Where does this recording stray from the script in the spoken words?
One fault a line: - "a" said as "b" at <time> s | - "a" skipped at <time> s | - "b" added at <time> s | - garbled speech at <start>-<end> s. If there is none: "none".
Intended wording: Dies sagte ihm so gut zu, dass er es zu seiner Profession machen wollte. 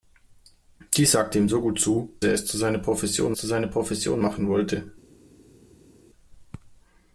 - "dass" skipped at 2.1 s
- "zu seiner Profession" added at 3.3 s